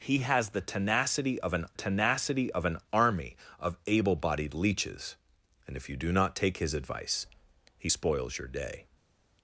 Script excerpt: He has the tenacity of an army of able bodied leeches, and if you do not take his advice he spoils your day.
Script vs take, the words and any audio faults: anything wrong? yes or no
yes